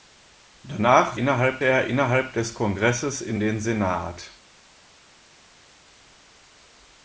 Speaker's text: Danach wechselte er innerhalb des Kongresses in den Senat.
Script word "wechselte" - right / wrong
wrong